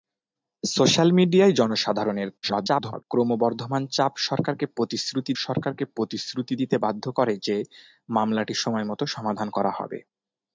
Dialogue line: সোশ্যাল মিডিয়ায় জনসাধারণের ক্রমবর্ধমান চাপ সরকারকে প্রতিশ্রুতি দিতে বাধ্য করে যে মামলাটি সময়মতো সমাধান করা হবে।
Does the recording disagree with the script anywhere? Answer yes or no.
yes